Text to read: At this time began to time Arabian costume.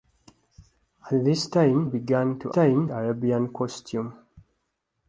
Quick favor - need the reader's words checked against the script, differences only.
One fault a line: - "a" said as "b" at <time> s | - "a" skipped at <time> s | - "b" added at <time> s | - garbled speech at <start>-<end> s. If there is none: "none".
none